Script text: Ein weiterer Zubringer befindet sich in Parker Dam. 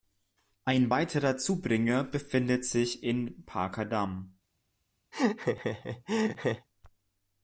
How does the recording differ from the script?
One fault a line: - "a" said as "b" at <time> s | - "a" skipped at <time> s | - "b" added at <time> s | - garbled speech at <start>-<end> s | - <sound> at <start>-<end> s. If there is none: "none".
- laugh at 5.1-6.7 s